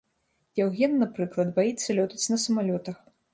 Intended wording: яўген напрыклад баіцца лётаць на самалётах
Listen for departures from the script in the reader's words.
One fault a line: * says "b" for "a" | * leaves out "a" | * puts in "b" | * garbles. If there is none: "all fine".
all fine